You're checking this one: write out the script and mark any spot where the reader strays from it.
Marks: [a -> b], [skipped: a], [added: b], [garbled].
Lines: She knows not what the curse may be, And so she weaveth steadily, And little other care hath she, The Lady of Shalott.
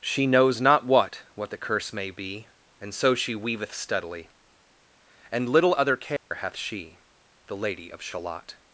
She knows not what [added: what] the curse may be, And so she weaveth steadily, And little other care hath she, The Lady of Shalott.